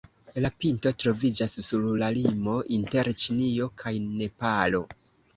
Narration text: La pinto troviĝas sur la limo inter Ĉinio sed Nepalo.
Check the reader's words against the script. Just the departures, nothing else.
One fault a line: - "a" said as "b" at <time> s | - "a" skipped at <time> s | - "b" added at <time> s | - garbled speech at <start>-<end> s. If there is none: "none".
- "sed" said as "kaj" at 3.8 s